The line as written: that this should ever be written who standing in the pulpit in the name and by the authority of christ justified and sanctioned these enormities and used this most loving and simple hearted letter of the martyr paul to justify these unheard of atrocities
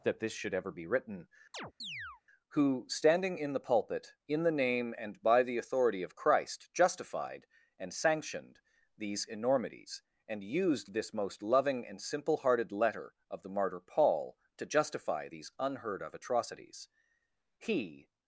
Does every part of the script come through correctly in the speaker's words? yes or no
no